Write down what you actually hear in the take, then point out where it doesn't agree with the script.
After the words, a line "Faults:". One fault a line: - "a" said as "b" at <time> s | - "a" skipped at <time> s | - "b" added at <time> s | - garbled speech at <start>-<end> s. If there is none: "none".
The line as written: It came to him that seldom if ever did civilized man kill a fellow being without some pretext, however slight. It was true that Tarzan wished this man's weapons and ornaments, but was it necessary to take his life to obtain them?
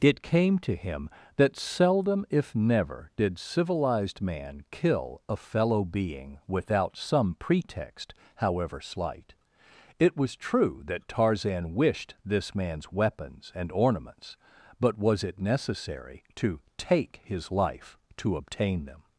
It came to him that seldom if never did civilized man kill a fellow being without some pretext, however slight. It was true that Tarzan wished this man's weapons and ornaments, but was it necessary to take his life to obtain them?
Faults:
- "ever" said as "never" at 2.5 s